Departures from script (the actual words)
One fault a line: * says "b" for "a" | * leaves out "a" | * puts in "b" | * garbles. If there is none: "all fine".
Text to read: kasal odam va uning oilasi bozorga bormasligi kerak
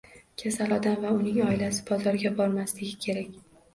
all fine